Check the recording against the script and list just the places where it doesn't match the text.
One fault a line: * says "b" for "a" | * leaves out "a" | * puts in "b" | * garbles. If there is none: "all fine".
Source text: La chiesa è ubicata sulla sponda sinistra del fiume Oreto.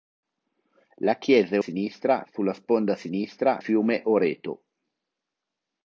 * says "sinistra" for "ubicata"
* leaves out "del"